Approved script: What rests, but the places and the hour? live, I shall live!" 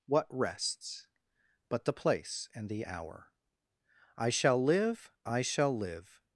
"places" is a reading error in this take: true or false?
true